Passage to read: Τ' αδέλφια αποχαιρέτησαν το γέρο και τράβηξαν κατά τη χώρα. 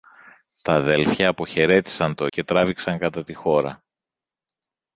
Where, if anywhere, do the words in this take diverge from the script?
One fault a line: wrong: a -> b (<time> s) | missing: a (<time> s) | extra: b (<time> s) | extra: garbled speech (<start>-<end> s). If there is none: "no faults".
missing: γέρο (2.3 s)